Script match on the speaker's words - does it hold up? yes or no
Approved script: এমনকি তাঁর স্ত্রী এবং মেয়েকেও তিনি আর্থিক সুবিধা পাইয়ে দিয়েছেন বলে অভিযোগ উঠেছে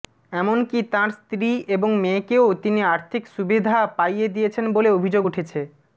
yes